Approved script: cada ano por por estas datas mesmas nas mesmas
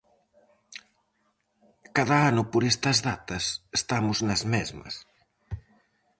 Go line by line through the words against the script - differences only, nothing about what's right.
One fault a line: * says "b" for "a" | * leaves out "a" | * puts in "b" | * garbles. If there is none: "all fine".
* leaves out "por"
* says "estamos" for "mesmas"